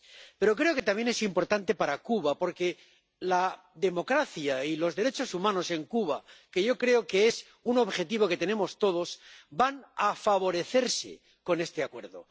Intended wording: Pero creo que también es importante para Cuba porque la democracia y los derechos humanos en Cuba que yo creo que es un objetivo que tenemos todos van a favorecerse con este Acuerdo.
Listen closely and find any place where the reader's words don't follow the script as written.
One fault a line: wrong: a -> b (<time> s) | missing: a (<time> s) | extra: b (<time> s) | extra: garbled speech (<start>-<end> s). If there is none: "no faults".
no faults